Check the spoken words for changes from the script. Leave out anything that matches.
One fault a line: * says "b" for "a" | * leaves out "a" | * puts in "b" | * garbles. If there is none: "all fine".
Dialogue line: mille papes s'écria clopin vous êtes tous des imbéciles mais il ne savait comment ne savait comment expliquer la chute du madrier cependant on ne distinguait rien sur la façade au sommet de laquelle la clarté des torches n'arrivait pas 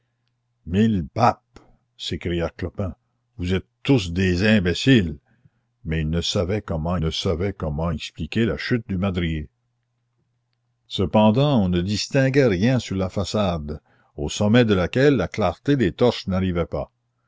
all fine